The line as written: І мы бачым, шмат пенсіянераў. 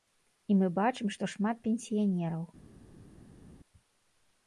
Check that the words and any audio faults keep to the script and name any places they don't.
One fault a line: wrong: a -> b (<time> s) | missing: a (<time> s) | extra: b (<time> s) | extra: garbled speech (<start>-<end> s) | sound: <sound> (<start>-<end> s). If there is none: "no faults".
extra: што (1.2 s)